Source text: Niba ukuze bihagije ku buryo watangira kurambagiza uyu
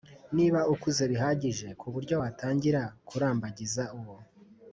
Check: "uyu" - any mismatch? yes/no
yes